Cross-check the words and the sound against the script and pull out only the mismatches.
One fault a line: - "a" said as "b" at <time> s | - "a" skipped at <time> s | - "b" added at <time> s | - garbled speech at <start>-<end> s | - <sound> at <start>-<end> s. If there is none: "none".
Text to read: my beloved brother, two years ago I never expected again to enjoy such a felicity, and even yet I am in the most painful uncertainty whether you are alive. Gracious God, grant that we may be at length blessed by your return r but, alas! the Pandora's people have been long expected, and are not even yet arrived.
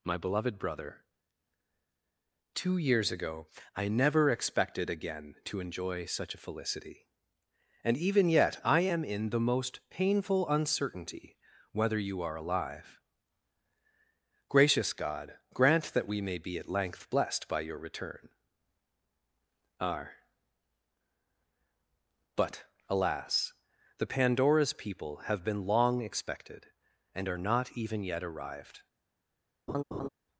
- laugh at 29.7-30.1 s